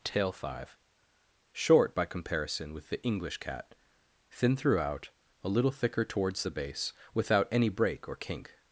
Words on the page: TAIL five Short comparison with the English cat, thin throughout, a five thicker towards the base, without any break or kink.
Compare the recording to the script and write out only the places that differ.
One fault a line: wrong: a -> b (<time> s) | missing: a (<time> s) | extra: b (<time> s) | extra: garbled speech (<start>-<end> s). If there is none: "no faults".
extra: by (1.9 s)
wrong: five -> little (5.5 s)